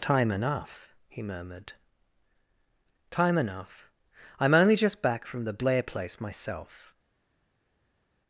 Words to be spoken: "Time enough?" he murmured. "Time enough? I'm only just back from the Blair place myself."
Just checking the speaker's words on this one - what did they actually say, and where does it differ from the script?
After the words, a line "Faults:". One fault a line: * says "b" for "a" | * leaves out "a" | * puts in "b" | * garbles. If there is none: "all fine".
"Time enough?" he murmured. "Time enough? I'm only just back from the Blair place myself."
Faults:
all fine